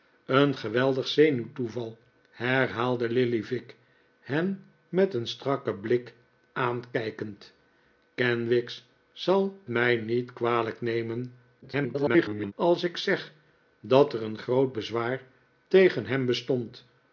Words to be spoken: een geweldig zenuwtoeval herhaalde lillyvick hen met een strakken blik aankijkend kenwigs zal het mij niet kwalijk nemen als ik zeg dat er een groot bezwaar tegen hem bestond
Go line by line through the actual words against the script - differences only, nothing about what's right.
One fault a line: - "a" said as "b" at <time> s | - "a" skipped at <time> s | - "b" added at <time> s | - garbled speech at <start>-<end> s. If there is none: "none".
- "het" skipped at 9.6 s
- garbled speech at 11.6-12.5 s